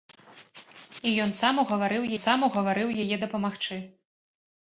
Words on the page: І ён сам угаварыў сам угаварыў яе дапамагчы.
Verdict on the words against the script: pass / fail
pass